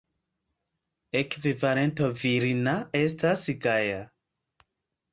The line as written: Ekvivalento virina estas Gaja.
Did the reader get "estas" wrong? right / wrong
right